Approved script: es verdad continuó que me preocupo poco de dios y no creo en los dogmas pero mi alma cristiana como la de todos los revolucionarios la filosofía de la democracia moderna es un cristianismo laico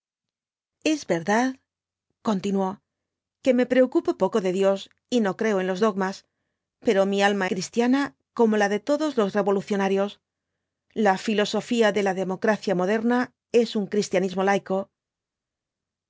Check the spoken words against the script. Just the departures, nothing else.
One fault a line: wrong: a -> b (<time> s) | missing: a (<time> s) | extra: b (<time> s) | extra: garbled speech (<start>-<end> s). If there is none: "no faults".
no faults